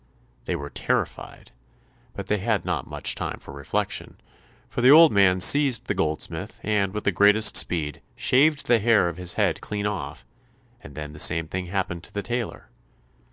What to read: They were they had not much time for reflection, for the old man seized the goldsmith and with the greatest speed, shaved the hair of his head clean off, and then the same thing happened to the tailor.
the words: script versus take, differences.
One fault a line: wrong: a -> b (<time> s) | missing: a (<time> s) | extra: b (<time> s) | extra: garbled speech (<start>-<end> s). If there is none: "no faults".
extra: terrified but (0.7 s)